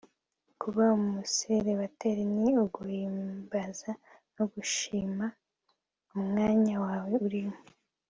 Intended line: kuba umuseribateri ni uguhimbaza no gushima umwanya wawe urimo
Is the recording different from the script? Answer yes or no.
no